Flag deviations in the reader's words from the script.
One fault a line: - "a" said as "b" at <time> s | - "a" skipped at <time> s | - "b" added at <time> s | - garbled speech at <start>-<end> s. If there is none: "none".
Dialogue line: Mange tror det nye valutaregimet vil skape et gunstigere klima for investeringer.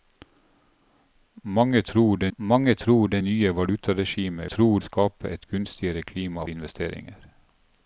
- "mange tror det" added at 2.4 s
- "vil" said as "tror" at 4.4 s
- "for" skipped at 6.4 s